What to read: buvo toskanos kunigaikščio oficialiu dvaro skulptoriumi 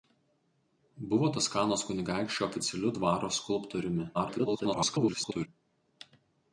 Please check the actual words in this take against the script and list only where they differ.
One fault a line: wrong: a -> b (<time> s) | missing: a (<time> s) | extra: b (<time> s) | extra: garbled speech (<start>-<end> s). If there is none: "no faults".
extra: garbled speech (4.1-5.5 s)